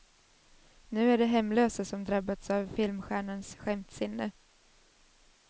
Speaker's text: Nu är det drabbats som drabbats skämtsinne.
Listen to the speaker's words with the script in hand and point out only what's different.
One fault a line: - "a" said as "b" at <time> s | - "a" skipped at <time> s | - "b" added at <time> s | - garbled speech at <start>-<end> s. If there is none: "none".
- "drabbats" said as "hemlösa" at 1.2 s
- "av filmstjärnans" added at 2.5 s